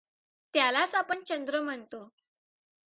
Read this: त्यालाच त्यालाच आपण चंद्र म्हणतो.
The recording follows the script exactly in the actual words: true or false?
false